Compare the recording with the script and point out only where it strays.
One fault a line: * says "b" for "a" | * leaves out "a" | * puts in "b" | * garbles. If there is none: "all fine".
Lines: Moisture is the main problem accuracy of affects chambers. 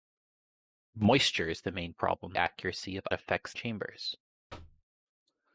all fine